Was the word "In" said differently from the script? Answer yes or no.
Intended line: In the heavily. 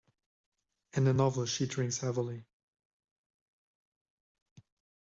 no